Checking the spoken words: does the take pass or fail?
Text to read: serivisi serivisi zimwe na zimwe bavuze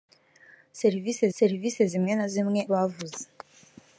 pass